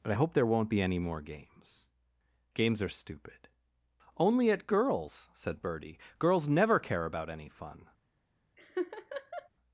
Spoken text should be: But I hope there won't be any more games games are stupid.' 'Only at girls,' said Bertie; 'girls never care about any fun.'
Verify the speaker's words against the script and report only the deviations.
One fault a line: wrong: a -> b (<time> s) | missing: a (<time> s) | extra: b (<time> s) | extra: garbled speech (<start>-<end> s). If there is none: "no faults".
no faults